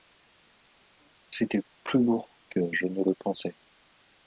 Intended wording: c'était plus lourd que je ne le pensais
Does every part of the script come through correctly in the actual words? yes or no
yes